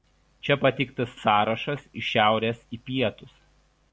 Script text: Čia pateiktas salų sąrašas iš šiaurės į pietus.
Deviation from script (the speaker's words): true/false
true